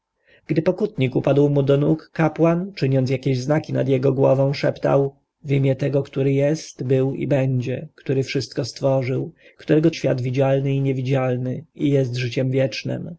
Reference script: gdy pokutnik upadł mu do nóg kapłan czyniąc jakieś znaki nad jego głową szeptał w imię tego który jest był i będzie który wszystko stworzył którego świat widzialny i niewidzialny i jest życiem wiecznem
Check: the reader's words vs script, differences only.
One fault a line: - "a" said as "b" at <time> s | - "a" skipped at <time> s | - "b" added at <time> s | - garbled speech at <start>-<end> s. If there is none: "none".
none